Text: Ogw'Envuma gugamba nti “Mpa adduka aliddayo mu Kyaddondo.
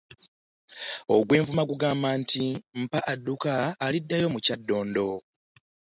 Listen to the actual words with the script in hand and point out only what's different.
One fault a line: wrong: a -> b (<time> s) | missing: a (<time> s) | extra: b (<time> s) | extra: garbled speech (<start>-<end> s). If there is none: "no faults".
no faults